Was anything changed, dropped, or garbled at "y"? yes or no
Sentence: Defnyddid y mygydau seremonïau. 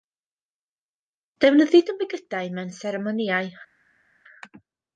no